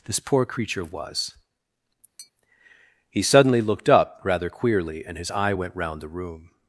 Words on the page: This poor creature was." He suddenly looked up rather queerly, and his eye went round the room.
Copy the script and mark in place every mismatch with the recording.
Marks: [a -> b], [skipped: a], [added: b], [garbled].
This poor creature was." He suddenly looked up rather queerly, and his eye went round the room.